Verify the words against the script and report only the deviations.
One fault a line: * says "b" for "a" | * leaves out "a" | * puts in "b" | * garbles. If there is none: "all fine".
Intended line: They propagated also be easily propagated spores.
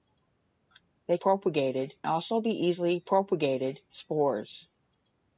all fine